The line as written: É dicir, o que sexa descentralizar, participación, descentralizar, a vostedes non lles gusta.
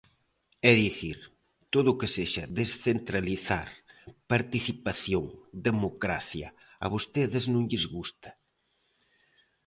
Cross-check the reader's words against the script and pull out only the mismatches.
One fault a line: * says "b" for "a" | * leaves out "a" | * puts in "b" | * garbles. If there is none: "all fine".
* puts in "todo"
* says "democracia" for "descentralizar"